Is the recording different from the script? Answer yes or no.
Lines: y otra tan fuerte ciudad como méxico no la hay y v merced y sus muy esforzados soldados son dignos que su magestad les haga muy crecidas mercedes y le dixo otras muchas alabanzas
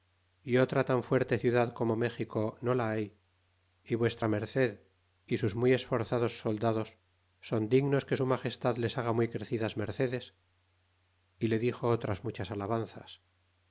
no